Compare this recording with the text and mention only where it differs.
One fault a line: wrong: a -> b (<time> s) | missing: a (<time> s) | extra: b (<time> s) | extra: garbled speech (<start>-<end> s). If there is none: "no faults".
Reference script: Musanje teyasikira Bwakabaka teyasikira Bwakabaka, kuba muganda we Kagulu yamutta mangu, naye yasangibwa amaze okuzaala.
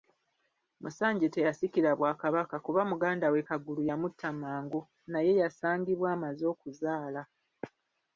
missing: teyasikira Bwakabaka (2.5 s)